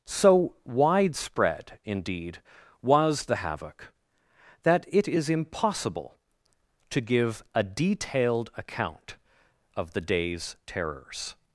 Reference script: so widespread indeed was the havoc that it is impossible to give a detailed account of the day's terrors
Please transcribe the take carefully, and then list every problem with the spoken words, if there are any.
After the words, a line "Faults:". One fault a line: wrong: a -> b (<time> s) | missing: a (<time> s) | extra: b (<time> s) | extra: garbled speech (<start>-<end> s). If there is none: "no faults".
so widespread indeed was the havoc that it is impossible to give a detailed account of the day's terrors
Faults:
no faults